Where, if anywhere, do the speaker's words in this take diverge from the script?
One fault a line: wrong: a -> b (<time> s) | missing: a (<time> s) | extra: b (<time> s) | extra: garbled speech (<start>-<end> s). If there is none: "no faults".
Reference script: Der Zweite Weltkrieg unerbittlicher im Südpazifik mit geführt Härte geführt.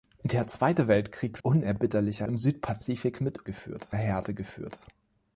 no faults